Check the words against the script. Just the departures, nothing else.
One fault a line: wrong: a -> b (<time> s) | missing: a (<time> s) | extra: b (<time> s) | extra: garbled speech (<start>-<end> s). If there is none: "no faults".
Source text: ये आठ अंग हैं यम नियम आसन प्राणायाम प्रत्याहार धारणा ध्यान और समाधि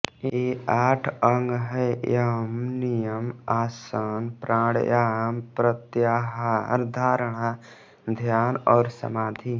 no faults